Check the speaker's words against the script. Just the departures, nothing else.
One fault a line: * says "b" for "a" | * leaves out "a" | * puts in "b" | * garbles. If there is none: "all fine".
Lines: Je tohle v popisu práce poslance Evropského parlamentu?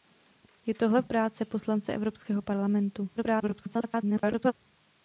* leaves out "popisu"
* garbles